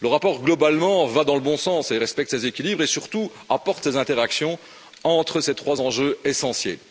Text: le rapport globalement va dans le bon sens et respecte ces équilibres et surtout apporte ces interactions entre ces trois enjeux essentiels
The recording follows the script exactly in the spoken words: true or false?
true